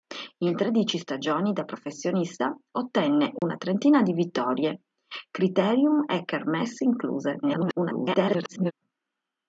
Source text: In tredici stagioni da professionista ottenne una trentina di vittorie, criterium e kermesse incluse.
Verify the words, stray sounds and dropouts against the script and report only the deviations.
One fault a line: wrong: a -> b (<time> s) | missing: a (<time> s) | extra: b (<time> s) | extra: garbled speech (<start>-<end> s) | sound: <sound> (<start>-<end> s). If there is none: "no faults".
sound: dropout (3.4-3.4 s)
extra: garbled speech (7.4-8.7 s)